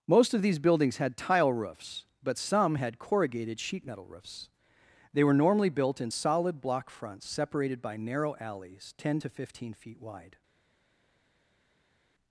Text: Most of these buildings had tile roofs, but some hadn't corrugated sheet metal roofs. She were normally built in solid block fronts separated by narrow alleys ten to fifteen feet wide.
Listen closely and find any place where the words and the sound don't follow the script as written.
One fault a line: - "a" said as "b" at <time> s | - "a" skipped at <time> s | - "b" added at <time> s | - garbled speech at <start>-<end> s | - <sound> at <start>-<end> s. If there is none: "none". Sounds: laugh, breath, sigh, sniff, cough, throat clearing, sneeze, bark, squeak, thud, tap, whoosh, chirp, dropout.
- "hadn't" said as "had" at 2.7 s
- "She" said as "They" at 5.1 s